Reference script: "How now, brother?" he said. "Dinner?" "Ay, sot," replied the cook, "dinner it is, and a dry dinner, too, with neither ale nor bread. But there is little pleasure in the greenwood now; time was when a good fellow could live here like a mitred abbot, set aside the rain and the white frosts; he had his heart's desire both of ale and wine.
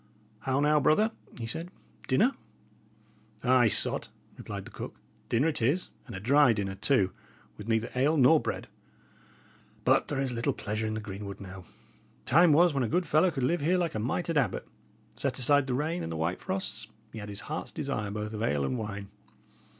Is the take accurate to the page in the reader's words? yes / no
yes